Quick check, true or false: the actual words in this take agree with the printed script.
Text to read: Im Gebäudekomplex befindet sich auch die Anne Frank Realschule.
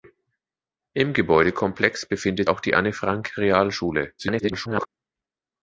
false